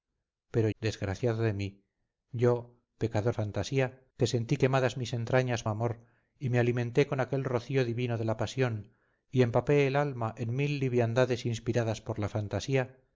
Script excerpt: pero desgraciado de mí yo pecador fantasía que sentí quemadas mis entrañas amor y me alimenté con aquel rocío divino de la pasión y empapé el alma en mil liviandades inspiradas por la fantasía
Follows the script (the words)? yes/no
yes